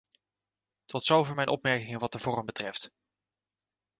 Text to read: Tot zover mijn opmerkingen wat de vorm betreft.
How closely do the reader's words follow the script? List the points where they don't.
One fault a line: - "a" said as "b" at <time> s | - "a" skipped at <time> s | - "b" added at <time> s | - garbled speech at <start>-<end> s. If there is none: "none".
none